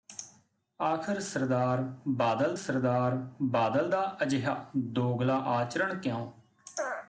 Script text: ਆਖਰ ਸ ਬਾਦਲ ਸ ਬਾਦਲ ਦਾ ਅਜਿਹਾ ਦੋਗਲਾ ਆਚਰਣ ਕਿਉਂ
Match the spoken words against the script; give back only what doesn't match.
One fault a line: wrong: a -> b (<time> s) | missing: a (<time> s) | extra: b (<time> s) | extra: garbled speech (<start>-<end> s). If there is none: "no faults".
no faults